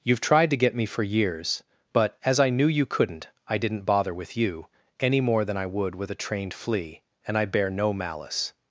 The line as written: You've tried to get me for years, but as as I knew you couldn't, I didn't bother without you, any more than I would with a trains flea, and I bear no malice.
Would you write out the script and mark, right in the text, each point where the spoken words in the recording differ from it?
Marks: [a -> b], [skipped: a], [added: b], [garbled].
You've tried to get me for years, but as [skipped: as] I knew you couldn't, I didn't bother [without -> with] you, any more than I would with a [trains -> trained] flea, and I bear no malice.